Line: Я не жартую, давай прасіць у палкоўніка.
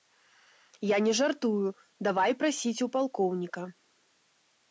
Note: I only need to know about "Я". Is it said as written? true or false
true